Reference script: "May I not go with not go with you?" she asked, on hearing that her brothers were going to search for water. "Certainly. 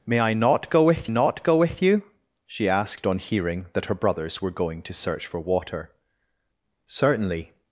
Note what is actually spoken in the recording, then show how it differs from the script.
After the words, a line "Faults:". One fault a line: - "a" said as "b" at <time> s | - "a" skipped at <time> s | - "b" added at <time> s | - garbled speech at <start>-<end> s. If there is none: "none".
"May I not go with not go with you?" she asked, on hearing that her brothers were going to search for water. "Certainly.
Faults:
none